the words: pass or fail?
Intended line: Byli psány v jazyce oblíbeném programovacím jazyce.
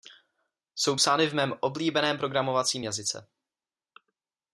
fail